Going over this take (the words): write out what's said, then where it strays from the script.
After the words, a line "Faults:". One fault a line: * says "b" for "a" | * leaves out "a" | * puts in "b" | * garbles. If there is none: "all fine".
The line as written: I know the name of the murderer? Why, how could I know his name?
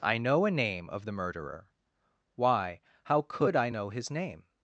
I know a name of the murderer? Why, how could I know his name?
Faults:
* says "a" for "the"